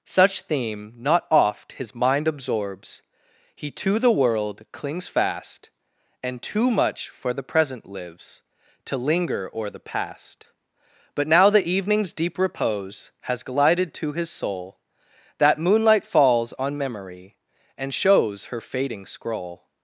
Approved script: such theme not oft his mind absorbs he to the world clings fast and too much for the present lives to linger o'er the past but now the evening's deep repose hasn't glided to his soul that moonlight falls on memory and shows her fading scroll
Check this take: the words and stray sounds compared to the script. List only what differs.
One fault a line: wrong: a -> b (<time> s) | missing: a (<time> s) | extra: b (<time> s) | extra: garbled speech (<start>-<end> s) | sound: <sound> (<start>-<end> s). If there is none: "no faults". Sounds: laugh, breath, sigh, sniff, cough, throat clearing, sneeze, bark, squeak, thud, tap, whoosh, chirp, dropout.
wrong: hasn't -> has (13.2 s)